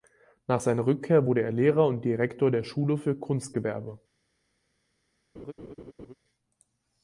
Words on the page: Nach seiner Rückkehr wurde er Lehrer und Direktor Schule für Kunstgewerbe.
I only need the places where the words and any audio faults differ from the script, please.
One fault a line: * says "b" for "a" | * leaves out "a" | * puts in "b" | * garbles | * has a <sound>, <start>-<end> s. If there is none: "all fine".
* puts in "der"
* has a laugh, 5.3-6.1 s